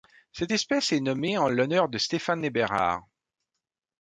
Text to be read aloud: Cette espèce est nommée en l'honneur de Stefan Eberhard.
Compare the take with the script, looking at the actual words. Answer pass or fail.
pass